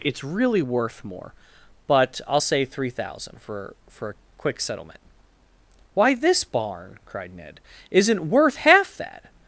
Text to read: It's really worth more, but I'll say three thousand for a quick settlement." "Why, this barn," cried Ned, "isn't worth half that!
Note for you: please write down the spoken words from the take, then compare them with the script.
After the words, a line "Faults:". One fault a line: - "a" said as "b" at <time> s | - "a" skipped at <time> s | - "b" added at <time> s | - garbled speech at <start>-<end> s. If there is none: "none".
It's really worth more, but I'll say three thousand for for a quick settlement." "Why, this barn," cried Ned, "isn't worth half that!
Faults:
- "for" added at 3.9 s